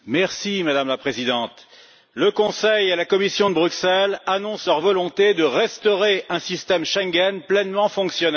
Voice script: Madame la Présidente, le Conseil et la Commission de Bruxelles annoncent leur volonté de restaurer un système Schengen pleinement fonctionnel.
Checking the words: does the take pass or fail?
pass